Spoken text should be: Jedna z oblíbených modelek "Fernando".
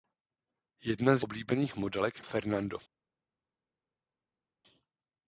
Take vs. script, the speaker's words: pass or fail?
pass